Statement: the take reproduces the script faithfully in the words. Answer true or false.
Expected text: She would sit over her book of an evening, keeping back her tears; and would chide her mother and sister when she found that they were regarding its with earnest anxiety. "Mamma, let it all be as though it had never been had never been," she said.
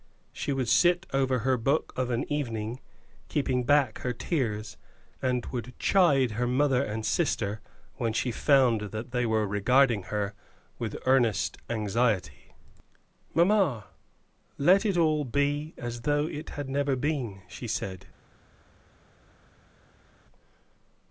false